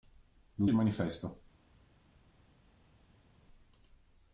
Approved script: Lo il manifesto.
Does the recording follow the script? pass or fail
pass